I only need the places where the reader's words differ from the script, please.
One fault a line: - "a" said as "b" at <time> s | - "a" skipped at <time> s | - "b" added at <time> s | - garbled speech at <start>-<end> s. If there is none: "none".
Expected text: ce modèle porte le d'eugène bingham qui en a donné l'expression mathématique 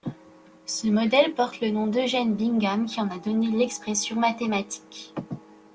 - "nom" added at 1.7 s